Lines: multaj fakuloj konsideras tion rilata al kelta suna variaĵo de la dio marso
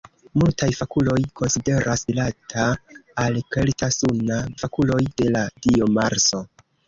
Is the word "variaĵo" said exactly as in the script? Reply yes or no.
no